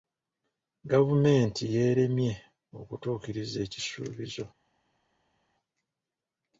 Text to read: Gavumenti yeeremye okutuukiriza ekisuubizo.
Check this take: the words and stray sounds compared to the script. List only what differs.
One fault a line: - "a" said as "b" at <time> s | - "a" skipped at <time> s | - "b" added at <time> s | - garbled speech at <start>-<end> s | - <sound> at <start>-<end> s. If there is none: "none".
none